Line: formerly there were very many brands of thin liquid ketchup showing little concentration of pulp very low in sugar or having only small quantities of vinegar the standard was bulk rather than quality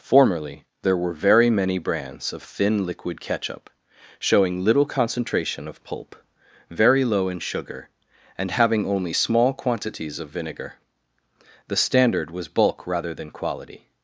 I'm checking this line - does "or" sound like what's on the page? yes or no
no